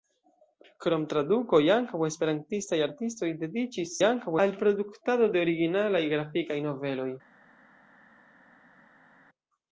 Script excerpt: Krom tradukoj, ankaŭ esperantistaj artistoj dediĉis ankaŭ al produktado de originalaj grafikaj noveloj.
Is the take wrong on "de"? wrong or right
right